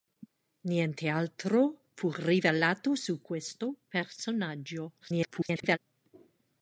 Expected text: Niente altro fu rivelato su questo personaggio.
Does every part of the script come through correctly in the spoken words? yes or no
no